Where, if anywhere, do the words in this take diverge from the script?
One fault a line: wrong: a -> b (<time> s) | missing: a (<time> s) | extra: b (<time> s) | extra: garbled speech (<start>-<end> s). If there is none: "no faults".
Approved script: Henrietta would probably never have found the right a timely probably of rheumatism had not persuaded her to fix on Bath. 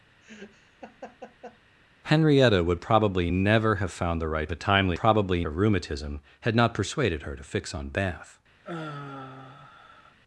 no faults